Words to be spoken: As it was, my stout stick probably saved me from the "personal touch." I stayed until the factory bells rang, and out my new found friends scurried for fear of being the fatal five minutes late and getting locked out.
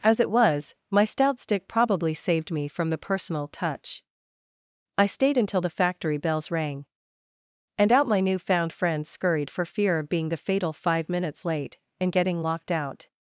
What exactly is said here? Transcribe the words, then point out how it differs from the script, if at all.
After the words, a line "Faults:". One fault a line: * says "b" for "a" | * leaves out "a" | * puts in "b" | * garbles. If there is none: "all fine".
As it was, my stout stick probably saved me from the "personal touch." I stayed until the factory bells rang, and out my new found friends scurried for fear of being the fatal five minutes late and getting locked out.
Faults:
all fine